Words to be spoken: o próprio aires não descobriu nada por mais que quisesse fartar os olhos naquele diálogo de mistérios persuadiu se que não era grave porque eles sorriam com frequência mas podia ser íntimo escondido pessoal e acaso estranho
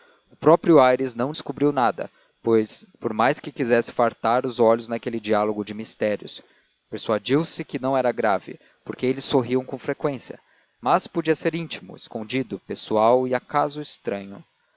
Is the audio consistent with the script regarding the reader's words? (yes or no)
yes